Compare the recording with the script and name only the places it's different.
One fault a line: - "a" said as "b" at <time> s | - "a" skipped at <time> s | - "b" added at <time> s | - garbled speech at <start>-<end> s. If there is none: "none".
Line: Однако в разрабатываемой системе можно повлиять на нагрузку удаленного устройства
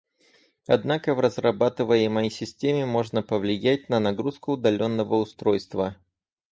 none